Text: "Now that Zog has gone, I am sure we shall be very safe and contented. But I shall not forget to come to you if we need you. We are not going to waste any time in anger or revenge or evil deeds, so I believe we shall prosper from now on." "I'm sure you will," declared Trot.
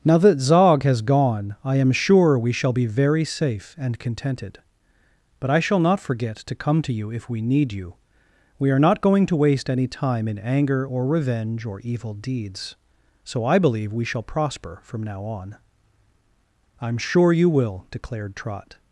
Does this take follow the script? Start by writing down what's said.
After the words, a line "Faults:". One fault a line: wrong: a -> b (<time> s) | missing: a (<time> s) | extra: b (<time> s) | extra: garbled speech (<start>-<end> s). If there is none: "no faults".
"Now that Zog has gone, I am sure we shall be very safe and contented. But I shall not forget to come to you if we need you. We are not going to waste any time in anger or revenge or evil deeds, so I believe we shall prosper from now on." "I'm sure you will," declared Trot.
Faults:
no faults